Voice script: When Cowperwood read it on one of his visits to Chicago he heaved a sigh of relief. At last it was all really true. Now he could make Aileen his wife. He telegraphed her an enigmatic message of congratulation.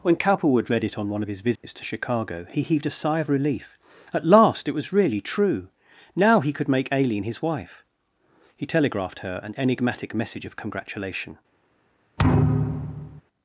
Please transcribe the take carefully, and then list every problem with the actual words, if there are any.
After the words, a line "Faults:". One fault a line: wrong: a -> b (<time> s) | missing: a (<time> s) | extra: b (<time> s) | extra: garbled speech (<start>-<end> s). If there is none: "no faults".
When Cowperwood read it on one of his visits to Chicago he heaved a sigh of relief. At last it was really true. Now he could make Aileen his wife. He telegraphed her an enigmatic message of congratulation.
Faults:
missing: all (4.9 s)